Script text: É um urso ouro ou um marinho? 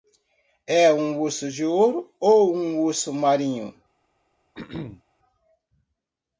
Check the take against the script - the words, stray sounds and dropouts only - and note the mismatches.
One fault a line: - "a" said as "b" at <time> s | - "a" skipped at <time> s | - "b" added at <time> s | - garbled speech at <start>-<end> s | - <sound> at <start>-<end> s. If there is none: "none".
- "de" added at 1.5 s
- "urso" added at 2.8 s
- throat clearing at 4.5-5.0 s